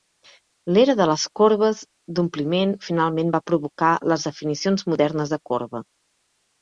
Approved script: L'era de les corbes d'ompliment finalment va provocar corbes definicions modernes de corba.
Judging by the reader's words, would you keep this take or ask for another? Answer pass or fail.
fail